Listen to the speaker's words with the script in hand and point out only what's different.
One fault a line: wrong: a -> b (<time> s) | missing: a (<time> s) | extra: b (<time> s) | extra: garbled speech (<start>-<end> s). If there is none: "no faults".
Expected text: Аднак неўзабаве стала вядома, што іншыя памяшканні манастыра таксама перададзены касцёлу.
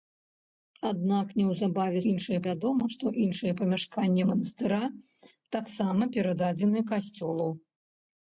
wrong: стала -> іншыя (2.1 s)